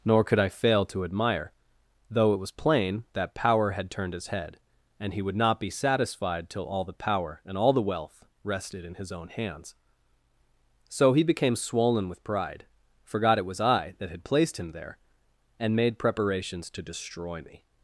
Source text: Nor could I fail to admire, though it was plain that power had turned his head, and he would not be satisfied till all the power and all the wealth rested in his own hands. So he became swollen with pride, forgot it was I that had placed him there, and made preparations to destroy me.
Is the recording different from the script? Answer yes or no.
no